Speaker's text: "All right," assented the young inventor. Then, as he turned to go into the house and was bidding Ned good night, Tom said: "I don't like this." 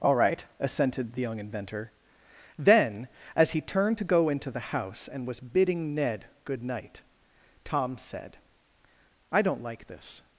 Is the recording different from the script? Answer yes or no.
no